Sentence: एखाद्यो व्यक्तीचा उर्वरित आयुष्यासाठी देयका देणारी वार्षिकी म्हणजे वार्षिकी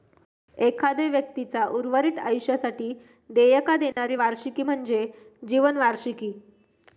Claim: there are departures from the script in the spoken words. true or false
true